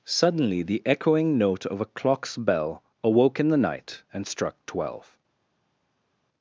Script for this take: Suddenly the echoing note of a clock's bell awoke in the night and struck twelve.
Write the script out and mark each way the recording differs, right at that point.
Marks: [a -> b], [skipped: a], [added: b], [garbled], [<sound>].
Suddenly the echoing note of a clock's bell awoke in the night and struck twelve.